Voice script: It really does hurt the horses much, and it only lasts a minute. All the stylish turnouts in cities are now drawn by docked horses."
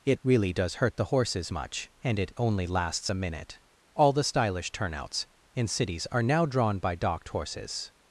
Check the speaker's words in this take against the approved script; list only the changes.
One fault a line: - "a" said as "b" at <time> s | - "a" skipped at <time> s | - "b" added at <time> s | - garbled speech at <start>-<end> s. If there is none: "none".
none